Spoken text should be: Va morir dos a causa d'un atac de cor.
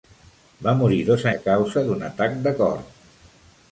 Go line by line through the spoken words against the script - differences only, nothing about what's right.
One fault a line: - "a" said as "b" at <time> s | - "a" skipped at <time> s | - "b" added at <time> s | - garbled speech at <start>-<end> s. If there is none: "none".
none